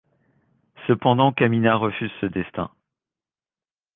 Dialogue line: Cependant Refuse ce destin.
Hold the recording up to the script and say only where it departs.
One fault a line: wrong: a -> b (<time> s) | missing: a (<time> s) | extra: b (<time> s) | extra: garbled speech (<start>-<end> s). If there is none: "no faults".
extra: Kamina (1.3 s)